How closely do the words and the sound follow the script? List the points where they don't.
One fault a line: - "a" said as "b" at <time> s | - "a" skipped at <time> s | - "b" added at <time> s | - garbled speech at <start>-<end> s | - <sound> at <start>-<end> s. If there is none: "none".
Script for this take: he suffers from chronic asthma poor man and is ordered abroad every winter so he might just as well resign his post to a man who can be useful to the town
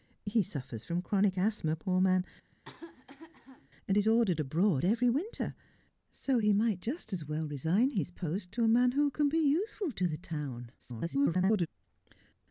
- cough at 2.5-3.7 s
- garbled speech at 10.8-11.7 s